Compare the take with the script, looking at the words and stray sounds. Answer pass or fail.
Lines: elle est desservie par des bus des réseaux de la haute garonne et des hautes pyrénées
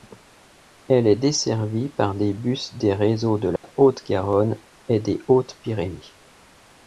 fail